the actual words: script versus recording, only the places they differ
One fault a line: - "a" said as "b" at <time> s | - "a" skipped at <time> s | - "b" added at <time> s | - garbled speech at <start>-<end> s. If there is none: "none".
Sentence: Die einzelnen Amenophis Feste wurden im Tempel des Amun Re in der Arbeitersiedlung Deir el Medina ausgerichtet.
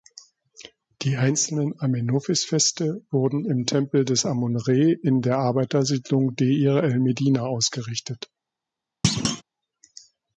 none